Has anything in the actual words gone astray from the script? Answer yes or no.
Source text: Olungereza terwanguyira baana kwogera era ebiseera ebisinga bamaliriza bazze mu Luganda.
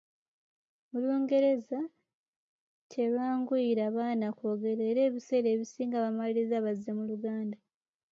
no